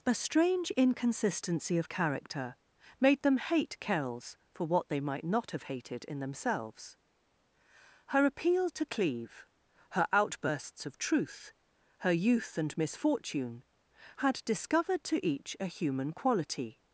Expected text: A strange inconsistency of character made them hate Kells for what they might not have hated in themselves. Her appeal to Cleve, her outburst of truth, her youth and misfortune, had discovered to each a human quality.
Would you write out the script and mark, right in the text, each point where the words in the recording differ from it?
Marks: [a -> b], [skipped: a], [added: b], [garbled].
A strange inconsistency of character made them hate Kells for what they might not have hated in themselves. Her appeal to Cleve, her [outburst -> outbursts] of truth, her youth and misfortune, had discovered to each a human quality.